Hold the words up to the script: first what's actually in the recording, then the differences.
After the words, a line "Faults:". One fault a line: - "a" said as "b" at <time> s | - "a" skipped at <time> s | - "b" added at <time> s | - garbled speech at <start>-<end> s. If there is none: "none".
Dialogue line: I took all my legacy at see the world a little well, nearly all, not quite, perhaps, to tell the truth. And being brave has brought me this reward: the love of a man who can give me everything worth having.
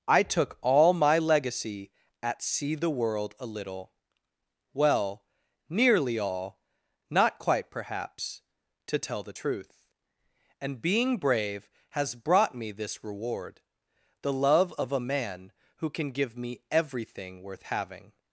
I took all my legacy at see the world a little well, nearly all, not quite, perhaps, to tell the truth. And being brave has brought me this reward: the love of a man who can give me everything worth having.
Faults:
none